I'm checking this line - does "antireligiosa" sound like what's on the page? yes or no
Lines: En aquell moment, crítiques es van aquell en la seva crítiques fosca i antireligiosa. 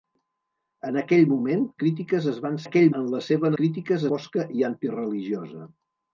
yes